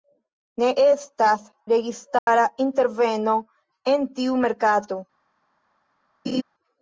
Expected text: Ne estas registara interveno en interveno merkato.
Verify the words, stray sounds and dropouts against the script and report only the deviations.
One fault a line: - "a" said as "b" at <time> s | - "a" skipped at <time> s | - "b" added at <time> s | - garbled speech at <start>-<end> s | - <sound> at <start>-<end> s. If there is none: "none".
- dropout at 2.2-2.3 s
- "interveno" said as "tiu" at 4.2 s
- laugh at 6.2-6.4 s